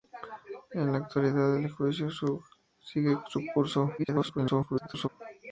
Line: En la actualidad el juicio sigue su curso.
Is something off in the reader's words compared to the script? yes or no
yes